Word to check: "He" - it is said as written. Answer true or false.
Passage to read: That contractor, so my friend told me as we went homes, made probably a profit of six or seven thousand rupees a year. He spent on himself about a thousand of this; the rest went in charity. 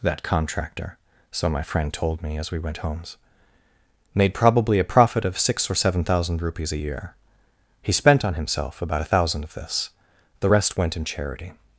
true